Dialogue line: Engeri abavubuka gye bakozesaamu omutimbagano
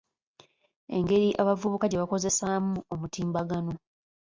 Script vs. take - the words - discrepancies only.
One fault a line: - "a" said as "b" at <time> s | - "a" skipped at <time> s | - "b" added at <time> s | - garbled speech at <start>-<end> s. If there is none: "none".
none